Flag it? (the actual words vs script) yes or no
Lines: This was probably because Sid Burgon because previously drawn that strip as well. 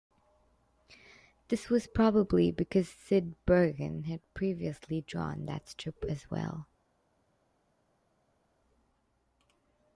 yes